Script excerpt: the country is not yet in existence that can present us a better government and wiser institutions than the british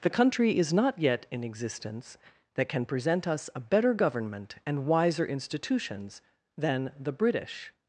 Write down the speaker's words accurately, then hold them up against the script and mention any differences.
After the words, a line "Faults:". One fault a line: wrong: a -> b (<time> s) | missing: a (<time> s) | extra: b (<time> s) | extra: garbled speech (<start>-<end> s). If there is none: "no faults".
the country is not yet in existence that can present us a better government and wiser institutions than the british
Faults:
no faults